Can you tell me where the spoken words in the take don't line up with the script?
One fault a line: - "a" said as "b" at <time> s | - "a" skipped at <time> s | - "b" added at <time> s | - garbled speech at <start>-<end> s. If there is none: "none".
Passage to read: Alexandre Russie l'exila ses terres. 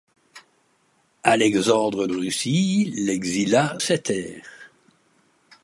none